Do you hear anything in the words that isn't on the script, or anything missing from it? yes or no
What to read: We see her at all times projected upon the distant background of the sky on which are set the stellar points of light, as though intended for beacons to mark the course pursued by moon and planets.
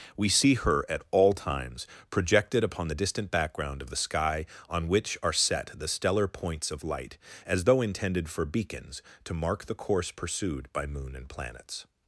no